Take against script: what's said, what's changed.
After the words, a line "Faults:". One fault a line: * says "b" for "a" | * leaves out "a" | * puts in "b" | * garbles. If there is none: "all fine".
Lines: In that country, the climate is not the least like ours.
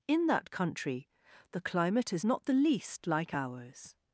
In that country, the climate is not the least like ours.
Faults:
all fine